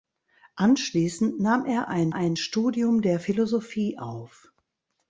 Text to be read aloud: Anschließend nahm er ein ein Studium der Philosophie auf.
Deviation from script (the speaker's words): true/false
false